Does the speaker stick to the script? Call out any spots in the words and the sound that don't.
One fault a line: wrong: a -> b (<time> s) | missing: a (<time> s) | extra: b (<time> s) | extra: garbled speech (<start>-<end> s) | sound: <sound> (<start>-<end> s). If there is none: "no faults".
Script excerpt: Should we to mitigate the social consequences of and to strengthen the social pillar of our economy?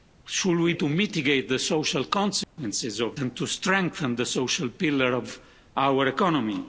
sound: dropout (2.4-2.6 s)